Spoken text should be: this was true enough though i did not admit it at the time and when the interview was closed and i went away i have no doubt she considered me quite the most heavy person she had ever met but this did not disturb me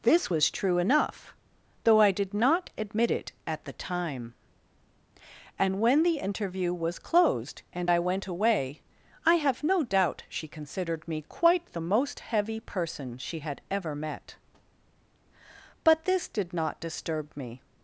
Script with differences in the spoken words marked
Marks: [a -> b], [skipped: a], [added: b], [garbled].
this was true enough though i did not admit it at the time and when the interview was closed and i went away i have no doubt she considered me quite the most heavy person she had ever met but this did not disturb me